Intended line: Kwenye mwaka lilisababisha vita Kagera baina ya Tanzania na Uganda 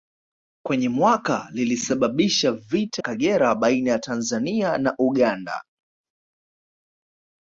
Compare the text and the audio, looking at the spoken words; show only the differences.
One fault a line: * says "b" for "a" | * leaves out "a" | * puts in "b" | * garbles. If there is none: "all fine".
all fine